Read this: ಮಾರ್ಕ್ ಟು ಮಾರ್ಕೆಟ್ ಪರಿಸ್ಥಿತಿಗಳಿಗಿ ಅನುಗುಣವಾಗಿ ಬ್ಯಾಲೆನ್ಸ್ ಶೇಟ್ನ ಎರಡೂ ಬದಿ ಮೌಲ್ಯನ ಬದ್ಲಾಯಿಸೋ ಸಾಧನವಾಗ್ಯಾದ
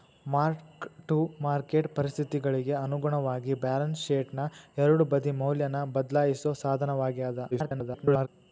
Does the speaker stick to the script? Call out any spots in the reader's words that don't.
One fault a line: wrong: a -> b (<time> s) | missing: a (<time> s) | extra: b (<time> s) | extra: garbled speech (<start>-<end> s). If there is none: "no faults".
extra: garbled speech (7.5-8.3 s)